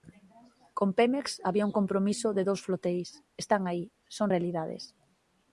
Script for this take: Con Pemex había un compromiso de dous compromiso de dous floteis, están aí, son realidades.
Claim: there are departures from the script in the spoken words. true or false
true